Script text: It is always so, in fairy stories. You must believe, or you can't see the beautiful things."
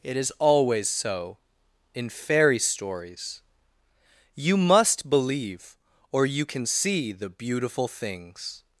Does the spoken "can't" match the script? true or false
false